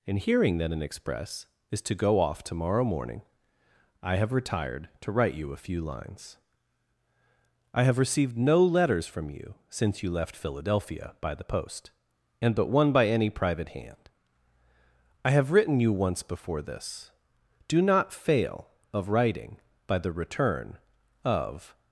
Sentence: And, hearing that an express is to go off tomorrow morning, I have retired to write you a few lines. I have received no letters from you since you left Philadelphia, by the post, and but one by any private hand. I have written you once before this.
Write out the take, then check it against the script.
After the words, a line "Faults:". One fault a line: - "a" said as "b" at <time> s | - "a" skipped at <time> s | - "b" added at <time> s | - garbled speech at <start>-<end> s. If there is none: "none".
And, hearing that an express is to go off tomorrow morning, I have retired to write you a few lines. I have received no letters from you since you left Philadelphia, by the post, and but one by any private hand. I have written you once before this. Do not fail of writing by the return of
Faults:
- "Do not fail of writing by the return of" added at 17.7 s